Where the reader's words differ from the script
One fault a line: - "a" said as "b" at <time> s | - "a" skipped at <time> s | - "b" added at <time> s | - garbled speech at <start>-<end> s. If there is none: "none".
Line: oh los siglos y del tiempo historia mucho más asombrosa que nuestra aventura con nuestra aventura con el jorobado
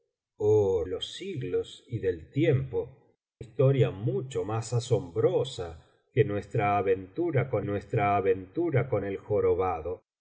none